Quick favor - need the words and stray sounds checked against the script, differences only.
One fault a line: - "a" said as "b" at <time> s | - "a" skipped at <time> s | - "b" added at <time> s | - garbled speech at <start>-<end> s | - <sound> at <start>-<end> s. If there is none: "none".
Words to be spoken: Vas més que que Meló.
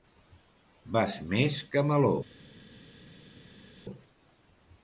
- "que" skipped at 1.8 s